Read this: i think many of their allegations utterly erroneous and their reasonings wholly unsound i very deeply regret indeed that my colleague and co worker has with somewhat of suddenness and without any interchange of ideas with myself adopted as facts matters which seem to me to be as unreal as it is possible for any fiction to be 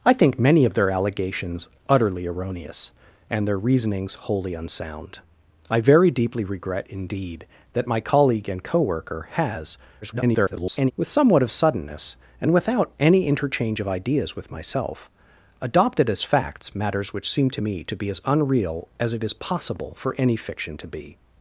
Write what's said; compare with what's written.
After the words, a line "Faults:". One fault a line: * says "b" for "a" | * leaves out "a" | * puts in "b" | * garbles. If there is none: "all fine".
i think many of their allegations utterly erroneous and their reasonings wholly unsound i very deeply regret indeed that my colleague and co worker has [garbled] with somewhat of suddenness and without any interchange of ideas with myself adopted as facts matters which seem to me to be as unreal as it is possible for any fiction to be
Faults:
* garbles